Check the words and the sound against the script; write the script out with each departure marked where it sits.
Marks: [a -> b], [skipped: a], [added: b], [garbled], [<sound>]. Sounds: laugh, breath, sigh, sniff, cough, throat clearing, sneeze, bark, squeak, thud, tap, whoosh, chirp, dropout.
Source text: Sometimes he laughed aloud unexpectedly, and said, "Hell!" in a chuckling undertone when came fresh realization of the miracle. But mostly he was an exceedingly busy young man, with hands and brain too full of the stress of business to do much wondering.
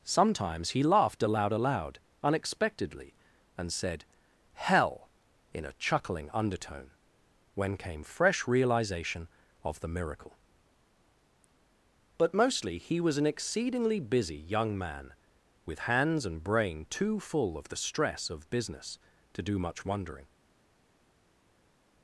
Sometimes he laughed aloud [added: aloud] unexpectedly, and said, "Hell!" in a chuckling undertone when came fresh realization of the miracle. But mostly he was an exceedingly busy young man, with hands and brain too full of the stress of business to do much wondering.